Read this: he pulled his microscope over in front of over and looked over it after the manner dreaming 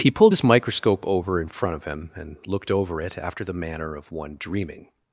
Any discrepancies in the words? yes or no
yes